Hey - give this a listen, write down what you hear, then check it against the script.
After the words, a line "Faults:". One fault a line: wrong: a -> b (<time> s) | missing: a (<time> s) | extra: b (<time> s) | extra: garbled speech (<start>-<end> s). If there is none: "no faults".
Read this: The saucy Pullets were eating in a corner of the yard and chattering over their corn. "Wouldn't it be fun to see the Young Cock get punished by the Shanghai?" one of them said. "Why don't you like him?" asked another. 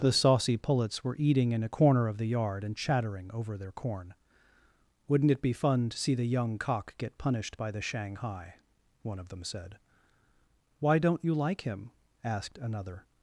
The saucy Pullets were eating in a corner of the yard and chattering over their corn. "Wouldn't it be fun to see the Young Cock get punished by the Shanghai?" one of them said. "Why don't you like him?" asked another.
Faults:
no faults